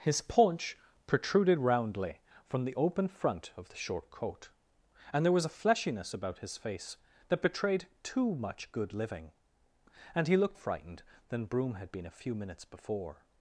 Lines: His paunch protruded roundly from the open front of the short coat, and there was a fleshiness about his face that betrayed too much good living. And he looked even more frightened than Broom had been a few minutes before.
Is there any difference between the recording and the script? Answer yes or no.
yes